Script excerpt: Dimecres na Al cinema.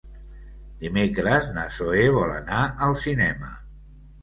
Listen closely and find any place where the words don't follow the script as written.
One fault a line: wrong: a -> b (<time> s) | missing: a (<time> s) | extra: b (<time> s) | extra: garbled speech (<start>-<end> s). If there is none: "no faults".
extra: Zoè vol anar (1.8 s)